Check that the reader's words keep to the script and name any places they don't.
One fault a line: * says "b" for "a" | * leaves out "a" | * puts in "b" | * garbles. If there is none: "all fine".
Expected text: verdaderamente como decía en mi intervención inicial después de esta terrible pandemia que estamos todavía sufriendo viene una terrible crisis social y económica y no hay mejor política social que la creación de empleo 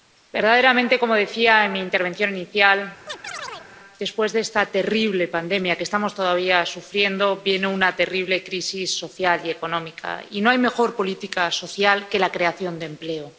all fine